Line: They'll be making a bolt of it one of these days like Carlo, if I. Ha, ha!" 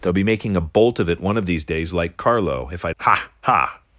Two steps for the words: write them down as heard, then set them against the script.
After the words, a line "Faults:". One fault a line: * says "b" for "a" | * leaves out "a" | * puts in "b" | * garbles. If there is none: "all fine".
They'll be making a bolt of it one of these days like Carlo, if I. Ha, ha!"
Faults:
all fine